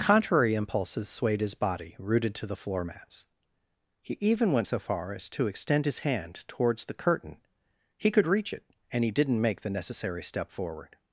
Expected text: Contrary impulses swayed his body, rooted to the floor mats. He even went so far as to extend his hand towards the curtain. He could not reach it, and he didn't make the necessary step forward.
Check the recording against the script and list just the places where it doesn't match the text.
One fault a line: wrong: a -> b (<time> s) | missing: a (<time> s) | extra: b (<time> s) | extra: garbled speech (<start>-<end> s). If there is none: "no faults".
missing: not (8.2 s)